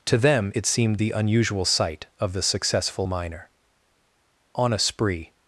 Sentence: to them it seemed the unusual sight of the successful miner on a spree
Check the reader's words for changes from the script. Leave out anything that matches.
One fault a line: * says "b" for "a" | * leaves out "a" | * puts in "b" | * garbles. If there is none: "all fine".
all fine